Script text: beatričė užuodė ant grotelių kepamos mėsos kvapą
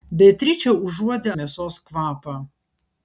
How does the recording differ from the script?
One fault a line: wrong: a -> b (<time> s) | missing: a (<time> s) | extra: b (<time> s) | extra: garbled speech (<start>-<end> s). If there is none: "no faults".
missing: ant grotelių kepamos (1.3 s)